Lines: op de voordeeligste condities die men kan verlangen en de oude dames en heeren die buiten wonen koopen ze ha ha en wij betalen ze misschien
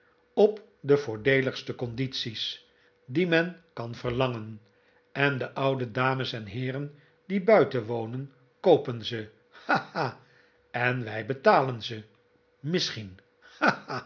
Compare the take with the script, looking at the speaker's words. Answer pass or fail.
pass